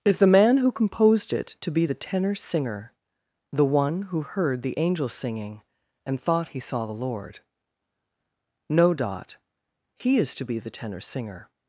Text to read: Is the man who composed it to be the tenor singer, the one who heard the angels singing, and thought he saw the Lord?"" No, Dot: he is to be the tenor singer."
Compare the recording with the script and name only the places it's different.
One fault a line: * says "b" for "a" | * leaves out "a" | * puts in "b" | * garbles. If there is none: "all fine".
all fine